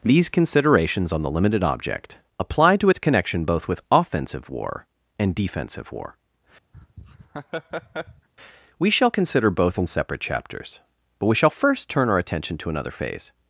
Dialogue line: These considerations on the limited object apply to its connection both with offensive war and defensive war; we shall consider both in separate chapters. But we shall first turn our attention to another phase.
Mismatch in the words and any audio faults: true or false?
true